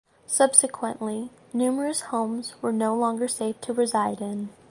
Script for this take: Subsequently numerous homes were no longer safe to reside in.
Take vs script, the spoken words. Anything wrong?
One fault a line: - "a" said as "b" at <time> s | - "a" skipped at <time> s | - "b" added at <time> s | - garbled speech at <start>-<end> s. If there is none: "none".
none